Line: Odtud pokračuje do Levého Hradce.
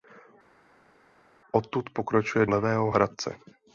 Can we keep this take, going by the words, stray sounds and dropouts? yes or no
no